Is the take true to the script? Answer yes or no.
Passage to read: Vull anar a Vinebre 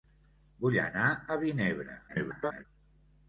no